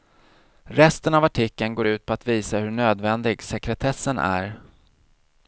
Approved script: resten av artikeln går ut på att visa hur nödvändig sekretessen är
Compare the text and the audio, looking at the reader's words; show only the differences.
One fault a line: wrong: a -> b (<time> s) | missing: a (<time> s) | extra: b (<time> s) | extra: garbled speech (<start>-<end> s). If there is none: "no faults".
no faults